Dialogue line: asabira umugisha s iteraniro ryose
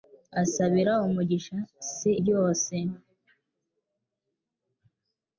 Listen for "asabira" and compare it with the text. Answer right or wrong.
right